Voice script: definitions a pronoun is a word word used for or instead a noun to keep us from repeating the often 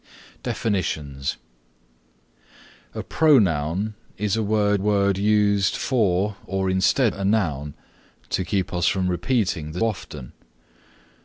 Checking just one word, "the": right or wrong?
right